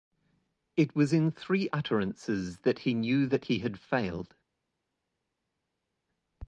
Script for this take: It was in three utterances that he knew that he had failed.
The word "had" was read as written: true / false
true